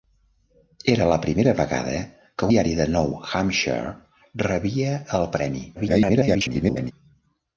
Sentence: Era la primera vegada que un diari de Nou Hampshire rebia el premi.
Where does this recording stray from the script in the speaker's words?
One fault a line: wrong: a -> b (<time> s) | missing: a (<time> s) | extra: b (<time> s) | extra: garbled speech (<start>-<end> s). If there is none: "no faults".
missing: un (2.5 s)
extra: garbled speech (5.8-6.9 s)